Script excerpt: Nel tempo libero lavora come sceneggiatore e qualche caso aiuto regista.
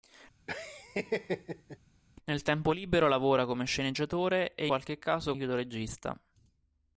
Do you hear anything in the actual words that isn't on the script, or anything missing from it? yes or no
no